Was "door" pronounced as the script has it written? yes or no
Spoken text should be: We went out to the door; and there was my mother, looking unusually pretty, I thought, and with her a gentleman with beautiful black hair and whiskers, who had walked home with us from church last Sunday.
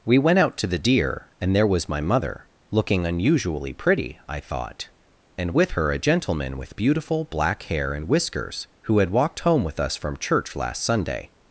no